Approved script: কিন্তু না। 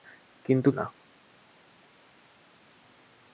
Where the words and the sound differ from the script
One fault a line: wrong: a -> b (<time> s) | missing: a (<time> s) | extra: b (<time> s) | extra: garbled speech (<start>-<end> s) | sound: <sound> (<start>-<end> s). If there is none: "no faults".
no faults